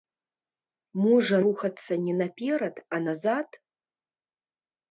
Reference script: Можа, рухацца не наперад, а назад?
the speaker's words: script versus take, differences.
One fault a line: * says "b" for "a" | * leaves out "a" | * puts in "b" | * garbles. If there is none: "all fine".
all fine